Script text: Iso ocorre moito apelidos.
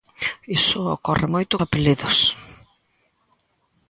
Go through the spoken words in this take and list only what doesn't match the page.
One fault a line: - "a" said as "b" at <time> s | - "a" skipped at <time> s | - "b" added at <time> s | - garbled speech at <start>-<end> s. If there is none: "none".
none